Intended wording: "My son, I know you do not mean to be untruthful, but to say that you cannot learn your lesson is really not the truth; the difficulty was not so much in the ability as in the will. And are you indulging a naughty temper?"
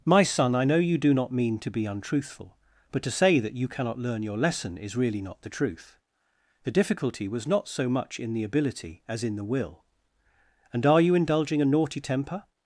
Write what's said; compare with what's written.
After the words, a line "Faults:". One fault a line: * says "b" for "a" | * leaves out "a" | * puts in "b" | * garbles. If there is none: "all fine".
"My son, I know you do not mean to be untruthful, but to say that you cannot learn your lesson is really not the truth; the difficulty was not so much in the ability as in the will. And are you indulging a naughty temper?"
Faults:
all fine